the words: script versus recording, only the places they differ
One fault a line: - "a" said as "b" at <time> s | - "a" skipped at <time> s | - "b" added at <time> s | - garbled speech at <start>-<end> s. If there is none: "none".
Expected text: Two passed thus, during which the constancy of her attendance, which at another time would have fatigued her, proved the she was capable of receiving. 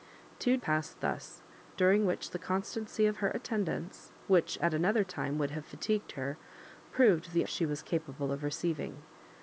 none